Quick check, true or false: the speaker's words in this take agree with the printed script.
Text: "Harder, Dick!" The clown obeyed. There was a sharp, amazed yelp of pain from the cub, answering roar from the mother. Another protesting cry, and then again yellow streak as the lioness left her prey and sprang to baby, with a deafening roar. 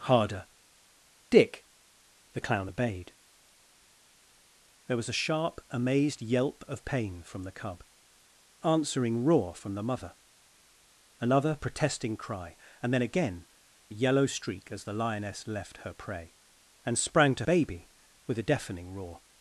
true